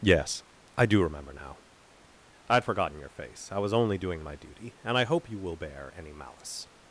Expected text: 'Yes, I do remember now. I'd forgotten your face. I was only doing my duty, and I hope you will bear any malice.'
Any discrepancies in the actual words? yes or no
no